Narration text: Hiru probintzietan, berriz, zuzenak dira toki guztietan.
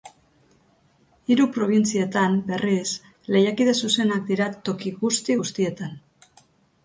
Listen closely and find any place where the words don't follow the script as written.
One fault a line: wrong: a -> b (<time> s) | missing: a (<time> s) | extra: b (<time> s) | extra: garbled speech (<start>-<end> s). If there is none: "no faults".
extra: lehiakide (3.4 s)
extra: guzti (5.0 s)